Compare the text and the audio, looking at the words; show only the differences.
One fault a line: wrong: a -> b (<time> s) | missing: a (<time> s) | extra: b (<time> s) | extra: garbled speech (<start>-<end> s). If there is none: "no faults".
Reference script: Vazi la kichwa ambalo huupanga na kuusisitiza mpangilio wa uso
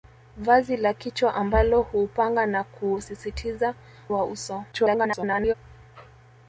missing: mpangilio (3.8 s)
extra: garbled speech (4.7-5.5 s)